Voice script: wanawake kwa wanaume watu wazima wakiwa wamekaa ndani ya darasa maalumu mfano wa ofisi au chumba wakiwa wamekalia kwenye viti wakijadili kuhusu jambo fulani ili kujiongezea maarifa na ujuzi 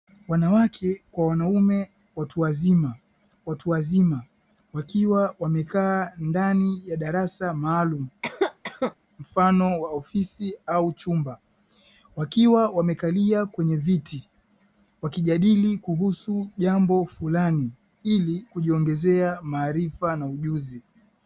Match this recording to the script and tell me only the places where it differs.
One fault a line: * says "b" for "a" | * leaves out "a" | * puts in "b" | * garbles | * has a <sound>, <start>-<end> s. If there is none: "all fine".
* puts in "watu wazima"
* has a cough, 8.2-9.0 s